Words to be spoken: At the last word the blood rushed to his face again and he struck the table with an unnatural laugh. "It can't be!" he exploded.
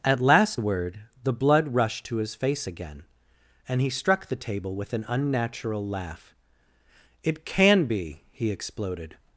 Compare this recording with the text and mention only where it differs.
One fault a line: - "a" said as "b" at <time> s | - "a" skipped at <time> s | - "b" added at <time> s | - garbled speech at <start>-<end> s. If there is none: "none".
- "the" skipped at 0.2 s
- "can't" said as "can" at 7.4 s